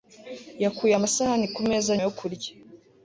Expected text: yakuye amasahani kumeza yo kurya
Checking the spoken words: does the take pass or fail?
pass